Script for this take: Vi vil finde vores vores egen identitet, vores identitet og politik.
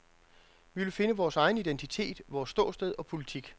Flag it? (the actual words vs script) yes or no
yes